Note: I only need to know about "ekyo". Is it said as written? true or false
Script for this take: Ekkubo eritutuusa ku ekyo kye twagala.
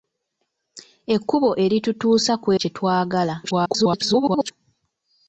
false